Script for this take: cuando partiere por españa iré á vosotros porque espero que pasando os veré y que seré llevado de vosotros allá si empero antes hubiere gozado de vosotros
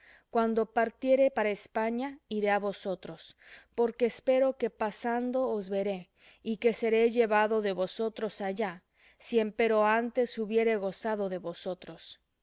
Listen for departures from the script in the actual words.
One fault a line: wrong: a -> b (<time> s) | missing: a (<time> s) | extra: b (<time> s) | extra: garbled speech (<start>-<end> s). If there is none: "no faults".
wrong: por -> para (1.4 s)